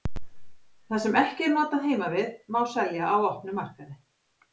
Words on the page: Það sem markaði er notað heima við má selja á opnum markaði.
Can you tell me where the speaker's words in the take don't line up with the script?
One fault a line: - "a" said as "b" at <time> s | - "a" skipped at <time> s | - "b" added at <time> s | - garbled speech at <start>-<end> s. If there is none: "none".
- "markaði" said as "ekki" at 1.2 s